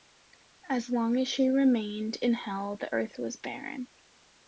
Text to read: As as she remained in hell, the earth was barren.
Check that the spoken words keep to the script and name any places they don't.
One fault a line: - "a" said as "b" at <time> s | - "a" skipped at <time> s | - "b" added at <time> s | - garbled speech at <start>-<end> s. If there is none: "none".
- "long" added at 0.9 s